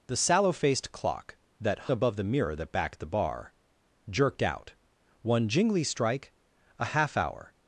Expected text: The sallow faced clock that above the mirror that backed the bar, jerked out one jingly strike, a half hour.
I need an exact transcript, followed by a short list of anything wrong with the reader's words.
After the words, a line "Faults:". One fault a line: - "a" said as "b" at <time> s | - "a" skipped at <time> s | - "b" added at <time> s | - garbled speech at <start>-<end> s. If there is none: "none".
The sallow faced clock that above the mirror that backed the bar, jerked out one jingly strike, a half hour.
Faults:
none